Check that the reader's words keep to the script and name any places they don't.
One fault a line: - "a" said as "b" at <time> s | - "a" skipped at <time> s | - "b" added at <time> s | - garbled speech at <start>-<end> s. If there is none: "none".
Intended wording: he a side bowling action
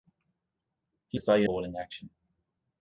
none